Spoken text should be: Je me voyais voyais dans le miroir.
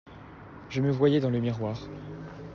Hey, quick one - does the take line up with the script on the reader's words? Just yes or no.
no